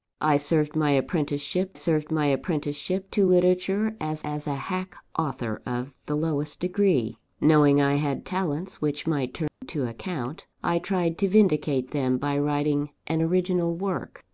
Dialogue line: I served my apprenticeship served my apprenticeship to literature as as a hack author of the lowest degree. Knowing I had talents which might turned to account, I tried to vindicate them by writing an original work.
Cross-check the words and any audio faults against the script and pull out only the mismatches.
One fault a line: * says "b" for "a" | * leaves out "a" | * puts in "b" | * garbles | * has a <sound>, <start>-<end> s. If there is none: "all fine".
* has a dropout, 9.5-9.6 s